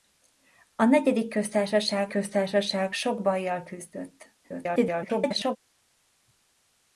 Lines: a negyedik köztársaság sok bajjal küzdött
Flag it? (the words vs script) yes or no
yes